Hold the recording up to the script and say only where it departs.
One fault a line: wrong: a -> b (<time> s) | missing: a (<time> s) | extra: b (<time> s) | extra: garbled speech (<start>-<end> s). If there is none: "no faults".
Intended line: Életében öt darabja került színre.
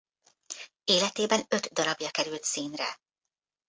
no faults